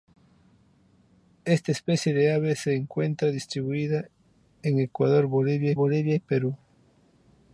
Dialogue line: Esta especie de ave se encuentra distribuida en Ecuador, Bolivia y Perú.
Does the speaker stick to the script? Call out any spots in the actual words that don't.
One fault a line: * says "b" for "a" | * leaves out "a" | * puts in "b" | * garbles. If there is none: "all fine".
* puts in "Bolivia"